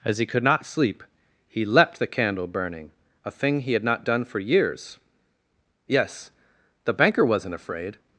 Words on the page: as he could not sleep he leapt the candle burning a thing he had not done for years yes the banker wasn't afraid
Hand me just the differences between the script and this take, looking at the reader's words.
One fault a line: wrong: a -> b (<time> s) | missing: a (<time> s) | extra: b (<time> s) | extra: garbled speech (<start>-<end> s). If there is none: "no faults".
no faults